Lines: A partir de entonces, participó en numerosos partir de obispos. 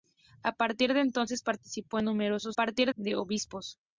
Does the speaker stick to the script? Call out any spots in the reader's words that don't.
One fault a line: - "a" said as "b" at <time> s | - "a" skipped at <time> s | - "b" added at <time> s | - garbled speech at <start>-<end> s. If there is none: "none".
none